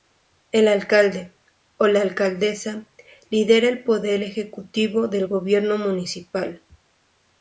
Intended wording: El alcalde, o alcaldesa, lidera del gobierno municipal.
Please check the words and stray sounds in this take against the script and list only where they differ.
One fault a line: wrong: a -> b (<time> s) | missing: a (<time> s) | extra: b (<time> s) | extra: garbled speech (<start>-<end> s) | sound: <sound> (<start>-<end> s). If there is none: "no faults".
extra: la (1.9 s)
extra: el poder ejecutivo (3.7 s)